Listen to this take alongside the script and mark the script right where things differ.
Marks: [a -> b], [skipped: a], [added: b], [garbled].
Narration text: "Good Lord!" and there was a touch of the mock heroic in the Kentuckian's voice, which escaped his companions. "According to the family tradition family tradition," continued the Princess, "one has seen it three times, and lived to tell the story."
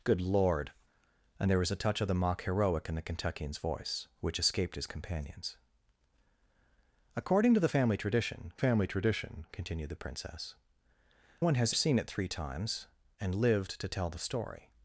"Good Lord!" and there was a touch of the mock heroic in the Kentuckian's voice, which escaped his companions. "According to the family tradition family tradition," continued the Princess, "one has seen it three times, and lived to tell the story."